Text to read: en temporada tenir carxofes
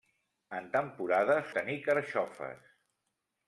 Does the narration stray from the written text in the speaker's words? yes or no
no